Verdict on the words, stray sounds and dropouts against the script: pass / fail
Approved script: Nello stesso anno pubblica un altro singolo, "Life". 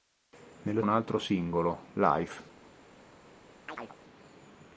fail